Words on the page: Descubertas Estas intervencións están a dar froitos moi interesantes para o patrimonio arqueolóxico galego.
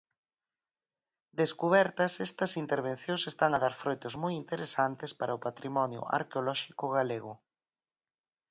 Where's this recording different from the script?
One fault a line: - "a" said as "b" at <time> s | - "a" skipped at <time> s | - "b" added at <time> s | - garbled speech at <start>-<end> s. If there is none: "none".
none